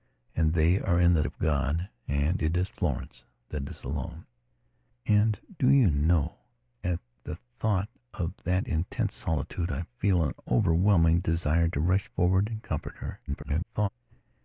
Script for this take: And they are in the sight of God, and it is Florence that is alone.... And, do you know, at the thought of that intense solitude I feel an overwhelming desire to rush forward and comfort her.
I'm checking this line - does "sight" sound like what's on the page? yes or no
no